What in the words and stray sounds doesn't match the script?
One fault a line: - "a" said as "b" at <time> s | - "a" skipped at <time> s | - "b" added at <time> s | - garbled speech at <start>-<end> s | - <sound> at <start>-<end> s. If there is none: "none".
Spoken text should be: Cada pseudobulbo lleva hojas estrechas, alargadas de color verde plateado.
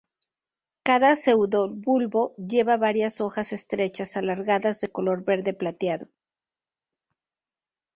- "varias" added at 2.8 s